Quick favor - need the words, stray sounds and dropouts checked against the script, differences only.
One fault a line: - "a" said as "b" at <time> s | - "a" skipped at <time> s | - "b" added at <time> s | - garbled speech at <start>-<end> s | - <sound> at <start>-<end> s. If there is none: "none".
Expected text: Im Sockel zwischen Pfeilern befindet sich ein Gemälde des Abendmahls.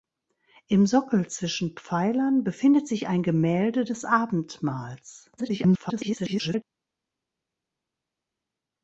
- garbled speech at 5.4-6.6 s